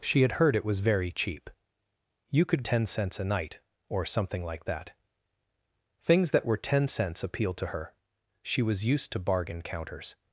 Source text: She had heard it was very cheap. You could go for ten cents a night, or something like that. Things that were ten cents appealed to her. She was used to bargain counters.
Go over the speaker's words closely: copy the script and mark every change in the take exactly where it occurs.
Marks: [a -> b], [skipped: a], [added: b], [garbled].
She had heard it was very cheap. You could [skipped: go for] ten cents a night, or something like that. Things that were ten cents appealed to her. She was used to bargain counters.